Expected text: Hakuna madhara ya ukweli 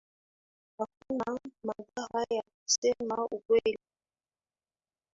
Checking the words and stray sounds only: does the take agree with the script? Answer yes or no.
no